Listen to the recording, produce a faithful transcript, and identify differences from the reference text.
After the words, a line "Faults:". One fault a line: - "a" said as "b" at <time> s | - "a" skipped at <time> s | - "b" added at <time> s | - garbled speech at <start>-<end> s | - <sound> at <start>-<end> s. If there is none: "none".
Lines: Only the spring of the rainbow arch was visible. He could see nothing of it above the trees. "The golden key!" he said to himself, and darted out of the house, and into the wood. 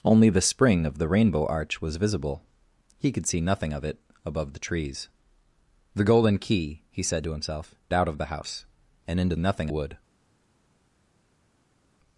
Only the spring of the rainbow arch was visible. He could see nothing of it above the trees. "The golden key!" he said to himself, out of the house, and into nothing wood.
Faults:
- "and darted" skipped at 7.8 s
- "the" said as "nothing" at 9.4 s